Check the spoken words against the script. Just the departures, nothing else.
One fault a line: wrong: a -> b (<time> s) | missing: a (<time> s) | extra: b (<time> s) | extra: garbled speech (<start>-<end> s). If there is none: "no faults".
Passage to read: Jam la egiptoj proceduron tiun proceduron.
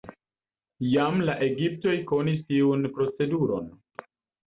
wrong: proceduron -> konis (2.1 s)